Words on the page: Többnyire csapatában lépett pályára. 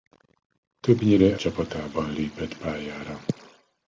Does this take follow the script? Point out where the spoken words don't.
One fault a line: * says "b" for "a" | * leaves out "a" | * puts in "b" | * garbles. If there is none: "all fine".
all fine